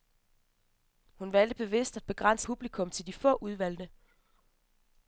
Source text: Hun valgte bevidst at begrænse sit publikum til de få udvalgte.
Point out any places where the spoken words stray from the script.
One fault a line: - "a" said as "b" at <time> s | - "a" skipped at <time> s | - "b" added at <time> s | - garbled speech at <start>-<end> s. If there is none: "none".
- "sit" skipped at 2.5 s